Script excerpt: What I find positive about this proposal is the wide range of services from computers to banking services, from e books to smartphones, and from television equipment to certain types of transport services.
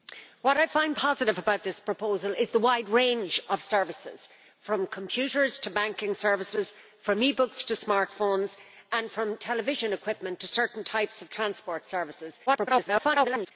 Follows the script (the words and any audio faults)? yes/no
no